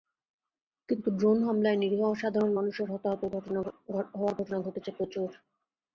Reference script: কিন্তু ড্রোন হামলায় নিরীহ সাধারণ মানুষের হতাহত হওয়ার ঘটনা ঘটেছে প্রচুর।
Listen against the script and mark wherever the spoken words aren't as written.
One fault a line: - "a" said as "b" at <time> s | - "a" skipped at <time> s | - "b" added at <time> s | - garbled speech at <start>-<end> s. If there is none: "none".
none